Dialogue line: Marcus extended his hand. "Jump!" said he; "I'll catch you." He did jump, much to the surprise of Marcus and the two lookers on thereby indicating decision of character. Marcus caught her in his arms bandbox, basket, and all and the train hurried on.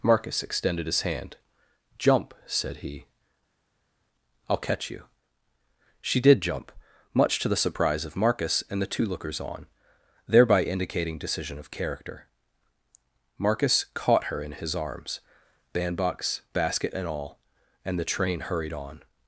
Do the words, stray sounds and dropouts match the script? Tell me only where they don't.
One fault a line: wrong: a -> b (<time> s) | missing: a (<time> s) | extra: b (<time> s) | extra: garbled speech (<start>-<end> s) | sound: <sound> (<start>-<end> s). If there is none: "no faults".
wrong: He -> She (6.0 s)